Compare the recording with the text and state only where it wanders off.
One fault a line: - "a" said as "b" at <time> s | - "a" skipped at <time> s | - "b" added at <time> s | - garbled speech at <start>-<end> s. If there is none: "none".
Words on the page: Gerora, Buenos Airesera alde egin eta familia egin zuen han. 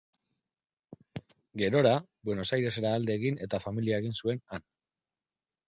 none